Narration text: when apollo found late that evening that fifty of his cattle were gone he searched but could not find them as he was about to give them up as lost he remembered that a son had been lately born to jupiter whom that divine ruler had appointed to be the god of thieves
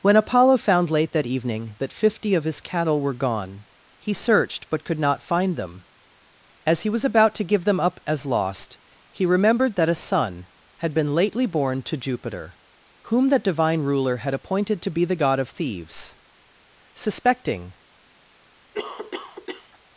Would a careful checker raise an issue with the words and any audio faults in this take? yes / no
yes